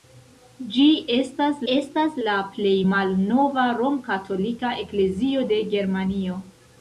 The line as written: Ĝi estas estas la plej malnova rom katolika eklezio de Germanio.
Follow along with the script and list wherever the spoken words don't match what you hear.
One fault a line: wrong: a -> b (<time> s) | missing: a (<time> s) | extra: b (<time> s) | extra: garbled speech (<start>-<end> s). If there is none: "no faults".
no faults